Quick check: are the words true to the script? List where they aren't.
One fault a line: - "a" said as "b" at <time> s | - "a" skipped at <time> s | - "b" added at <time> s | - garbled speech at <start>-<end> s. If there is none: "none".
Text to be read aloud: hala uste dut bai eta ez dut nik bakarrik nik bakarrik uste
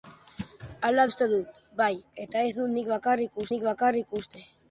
none